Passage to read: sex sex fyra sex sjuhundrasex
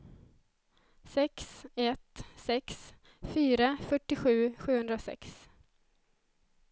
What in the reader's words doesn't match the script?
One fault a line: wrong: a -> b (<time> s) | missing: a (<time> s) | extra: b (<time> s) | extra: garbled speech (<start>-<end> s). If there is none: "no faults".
extra: ett (1.8 s)
wrong: sex -> fyrtiosju (3.9 s)